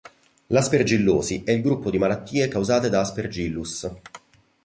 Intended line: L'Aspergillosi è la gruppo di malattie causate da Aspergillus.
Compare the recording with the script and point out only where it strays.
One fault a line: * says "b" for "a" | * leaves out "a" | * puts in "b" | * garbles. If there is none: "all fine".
* says "il" for "la"